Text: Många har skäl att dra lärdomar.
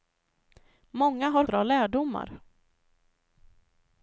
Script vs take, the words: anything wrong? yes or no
yes